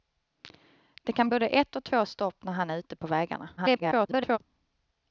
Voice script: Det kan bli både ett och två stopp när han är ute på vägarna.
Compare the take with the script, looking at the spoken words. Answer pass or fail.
fail